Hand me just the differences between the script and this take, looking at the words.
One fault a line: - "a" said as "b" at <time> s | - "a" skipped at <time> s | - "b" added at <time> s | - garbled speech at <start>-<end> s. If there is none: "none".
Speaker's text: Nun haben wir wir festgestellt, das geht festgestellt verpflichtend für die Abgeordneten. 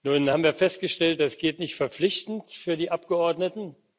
- "wir" skipped at 0.5 s
- "festgestellt" said as "nicht" at 1.6 s